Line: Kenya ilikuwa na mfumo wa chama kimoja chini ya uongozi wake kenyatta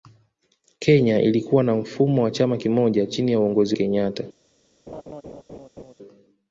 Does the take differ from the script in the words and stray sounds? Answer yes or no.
yes